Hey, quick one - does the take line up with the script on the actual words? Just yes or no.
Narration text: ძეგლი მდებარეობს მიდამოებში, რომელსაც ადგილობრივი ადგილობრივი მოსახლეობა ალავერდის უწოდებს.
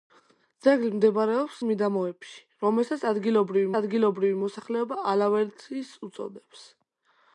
yes